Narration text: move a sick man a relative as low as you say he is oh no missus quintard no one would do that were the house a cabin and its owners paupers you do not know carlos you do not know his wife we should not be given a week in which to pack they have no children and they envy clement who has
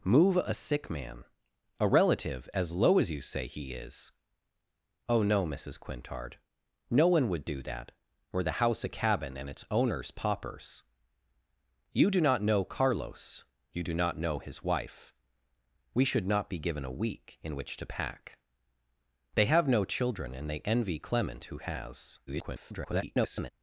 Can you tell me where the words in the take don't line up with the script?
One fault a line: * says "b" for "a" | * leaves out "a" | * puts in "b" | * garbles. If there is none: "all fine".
* garbles